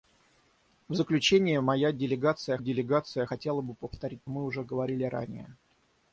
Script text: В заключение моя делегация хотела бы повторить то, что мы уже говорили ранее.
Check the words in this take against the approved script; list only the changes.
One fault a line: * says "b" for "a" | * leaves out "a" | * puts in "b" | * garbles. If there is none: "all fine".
* puts in "делегация"
* leaves out "то что"